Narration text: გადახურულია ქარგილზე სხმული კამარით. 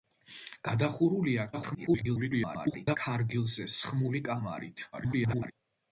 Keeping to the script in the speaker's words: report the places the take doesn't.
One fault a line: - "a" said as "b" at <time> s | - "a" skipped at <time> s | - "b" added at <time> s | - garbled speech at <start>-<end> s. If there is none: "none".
- garbled speech at 1.5-3.0 s
- garbled speech at 4.9-5.5 s